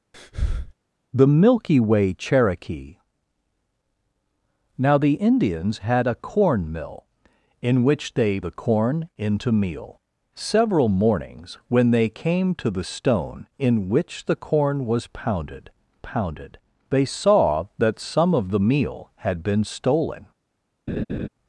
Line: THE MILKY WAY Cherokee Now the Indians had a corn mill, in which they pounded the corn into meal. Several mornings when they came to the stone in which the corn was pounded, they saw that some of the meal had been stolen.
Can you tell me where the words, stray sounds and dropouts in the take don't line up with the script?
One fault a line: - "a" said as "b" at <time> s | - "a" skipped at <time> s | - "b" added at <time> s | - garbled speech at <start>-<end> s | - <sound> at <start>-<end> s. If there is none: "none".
- breath at 0.1-0.7 s
- "pounded" skipped at 8.4 s
- "pounded" added at 16.0 s
- laugh at 20.9-21.3 s